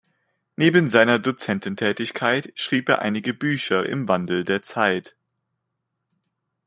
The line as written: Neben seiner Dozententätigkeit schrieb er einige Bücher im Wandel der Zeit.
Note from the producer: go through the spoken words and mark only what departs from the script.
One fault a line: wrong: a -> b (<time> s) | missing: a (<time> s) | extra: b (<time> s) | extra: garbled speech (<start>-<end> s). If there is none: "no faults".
no faults